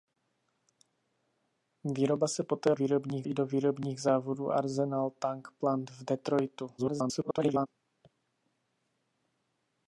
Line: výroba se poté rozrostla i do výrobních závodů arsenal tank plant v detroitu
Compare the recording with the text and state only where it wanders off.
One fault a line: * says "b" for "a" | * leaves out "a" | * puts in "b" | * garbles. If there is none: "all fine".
* says "výrobních" for "rozrostla"
* garbles